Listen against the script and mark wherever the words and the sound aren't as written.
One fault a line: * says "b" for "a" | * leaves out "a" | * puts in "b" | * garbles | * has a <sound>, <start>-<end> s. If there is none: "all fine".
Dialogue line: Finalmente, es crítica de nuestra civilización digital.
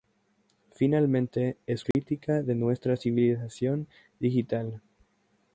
* has a dropout, 1.9-1.9 s